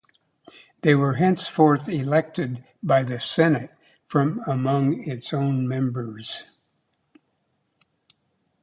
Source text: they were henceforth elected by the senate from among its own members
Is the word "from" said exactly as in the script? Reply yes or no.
yes